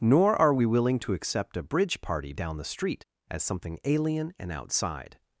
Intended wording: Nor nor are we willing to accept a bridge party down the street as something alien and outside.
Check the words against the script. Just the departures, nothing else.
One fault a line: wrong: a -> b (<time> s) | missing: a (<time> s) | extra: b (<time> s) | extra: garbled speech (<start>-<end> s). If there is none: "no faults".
missing: nor (0.3 s)